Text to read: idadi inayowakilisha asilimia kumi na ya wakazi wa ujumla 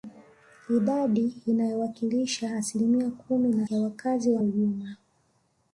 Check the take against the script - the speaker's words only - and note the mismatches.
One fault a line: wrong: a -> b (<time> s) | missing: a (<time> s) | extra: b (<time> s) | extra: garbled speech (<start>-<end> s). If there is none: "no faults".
no faults